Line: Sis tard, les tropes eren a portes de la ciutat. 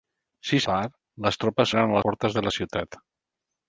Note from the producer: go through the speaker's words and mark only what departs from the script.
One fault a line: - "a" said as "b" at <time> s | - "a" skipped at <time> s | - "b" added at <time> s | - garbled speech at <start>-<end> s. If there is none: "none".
none